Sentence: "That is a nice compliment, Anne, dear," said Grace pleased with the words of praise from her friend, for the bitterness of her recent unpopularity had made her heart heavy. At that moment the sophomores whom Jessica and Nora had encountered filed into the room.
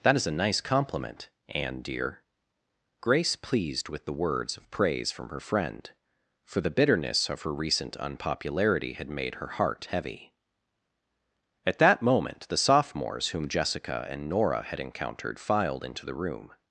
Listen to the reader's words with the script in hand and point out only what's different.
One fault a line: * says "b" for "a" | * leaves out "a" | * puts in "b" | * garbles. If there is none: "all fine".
* leaves out "said"